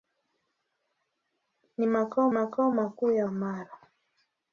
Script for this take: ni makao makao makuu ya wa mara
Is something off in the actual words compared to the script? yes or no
no